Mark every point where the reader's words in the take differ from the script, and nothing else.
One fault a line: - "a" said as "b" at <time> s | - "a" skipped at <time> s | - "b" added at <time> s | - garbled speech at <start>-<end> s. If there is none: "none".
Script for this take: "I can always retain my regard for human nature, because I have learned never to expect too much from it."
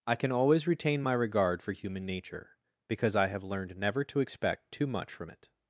none